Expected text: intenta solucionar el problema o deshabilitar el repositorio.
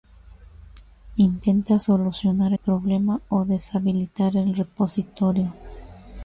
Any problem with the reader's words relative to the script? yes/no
yes